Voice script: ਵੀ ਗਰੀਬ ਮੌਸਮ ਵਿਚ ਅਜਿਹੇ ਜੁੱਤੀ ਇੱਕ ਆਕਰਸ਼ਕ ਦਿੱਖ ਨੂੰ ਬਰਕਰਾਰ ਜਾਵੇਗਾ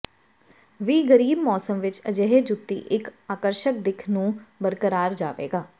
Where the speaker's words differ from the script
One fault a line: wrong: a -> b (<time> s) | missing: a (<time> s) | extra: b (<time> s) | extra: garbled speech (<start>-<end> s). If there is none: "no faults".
no faults